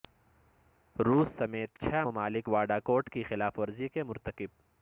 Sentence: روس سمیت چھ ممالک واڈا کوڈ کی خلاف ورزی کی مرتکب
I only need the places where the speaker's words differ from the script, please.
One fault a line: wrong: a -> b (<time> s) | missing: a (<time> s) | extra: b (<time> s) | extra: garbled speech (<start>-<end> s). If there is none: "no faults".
wrong: کی -> کے (3.9 s)